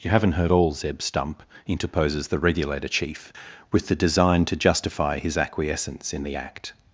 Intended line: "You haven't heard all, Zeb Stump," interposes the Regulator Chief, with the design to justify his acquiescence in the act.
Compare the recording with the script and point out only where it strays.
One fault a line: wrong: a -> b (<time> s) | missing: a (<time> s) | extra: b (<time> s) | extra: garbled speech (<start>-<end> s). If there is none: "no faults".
no faults